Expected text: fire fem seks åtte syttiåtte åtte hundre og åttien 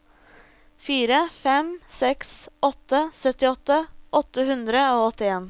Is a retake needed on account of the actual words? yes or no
no